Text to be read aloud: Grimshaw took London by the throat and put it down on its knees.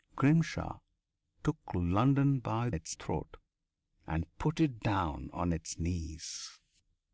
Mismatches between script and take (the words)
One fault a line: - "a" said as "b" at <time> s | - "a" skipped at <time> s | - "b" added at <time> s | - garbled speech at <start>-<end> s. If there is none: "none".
- "the" said as "its" at 2.7 s